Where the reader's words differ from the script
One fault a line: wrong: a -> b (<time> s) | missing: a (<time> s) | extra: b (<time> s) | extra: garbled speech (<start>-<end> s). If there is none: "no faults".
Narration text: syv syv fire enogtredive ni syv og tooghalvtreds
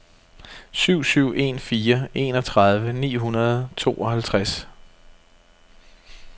extra: en (1.4 s)
wrong: syv -> hundrede (3.1 s)